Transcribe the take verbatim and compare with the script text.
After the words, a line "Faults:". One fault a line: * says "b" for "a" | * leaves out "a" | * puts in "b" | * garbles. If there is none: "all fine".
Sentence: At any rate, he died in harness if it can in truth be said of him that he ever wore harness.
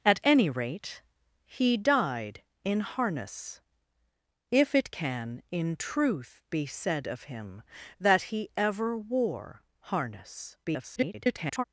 At any rate, he died in harness if it can in truth be said of him that he ever wore harness. [garbled]
Faults:
* garbles